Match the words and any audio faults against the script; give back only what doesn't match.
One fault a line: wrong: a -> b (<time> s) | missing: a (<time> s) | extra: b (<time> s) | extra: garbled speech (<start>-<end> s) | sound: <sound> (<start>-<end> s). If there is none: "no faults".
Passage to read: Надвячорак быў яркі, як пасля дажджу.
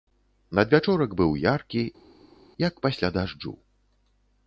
no faults